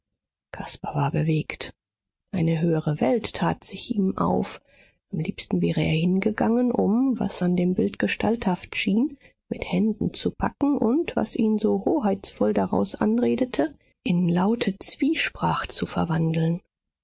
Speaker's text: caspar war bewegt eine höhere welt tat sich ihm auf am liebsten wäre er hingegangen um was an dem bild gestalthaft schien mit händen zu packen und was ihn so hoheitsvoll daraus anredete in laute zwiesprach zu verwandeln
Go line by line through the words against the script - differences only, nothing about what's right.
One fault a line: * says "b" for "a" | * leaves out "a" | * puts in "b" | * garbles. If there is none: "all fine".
all fine